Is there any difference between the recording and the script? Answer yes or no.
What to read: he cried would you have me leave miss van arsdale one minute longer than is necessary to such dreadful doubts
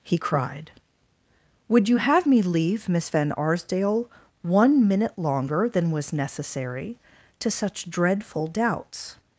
yes